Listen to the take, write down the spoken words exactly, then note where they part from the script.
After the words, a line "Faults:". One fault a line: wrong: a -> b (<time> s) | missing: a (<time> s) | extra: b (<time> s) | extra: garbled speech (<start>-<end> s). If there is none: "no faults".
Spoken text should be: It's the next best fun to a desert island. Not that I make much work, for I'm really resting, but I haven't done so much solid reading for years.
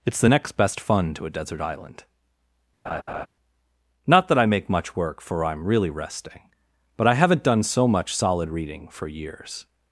It's the next best fun to a desert island. Not that I make much work, for I'm really resting, but I haven't done so much solid reading for years.
Faults:
no faults